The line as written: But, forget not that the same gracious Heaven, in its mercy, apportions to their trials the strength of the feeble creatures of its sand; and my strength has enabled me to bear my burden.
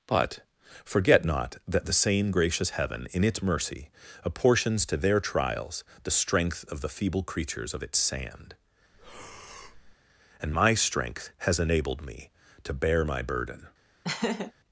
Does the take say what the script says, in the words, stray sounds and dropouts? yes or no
no